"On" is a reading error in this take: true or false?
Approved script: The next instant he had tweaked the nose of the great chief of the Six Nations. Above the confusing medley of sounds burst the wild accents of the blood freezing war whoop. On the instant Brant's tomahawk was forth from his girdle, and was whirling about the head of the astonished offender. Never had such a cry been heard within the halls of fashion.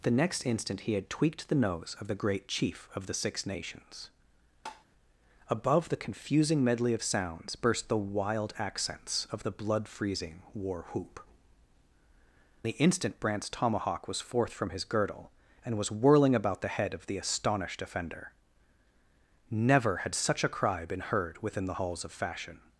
true